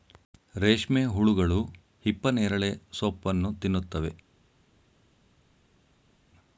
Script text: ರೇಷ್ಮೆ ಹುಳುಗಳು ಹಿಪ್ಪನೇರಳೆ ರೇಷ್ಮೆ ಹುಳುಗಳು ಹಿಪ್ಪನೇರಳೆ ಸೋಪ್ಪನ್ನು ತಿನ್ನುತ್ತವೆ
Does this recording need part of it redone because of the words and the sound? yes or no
yes